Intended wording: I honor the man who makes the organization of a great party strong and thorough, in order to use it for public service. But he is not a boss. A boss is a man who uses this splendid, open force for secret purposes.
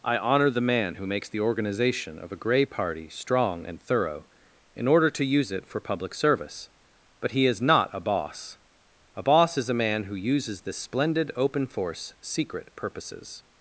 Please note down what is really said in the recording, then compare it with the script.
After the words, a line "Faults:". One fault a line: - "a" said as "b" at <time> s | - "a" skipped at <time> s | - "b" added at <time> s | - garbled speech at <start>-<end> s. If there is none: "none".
I honor the man who makes the organization of a grey party strong and thorough, in order to use it for public service. But he is not a boss. A boss is a man who uses this splendid, open force secret purposes.
Faults:
- "great" said as "grey" at 2.4 s
- "for" skipped at 12.1 s